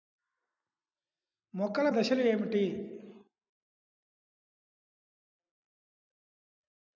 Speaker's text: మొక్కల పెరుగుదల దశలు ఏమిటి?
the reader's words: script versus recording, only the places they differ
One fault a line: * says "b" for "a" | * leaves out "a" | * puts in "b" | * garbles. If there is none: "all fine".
* leaves out "పెరుగుదల"